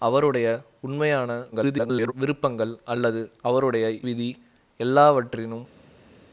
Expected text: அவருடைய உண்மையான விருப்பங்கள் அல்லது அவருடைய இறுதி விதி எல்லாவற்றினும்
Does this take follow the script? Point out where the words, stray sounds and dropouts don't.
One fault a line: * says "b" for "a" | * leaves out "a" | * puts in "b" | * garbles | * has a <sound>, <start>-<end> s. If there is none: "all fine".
* garbles
* leaves out "இறுதி"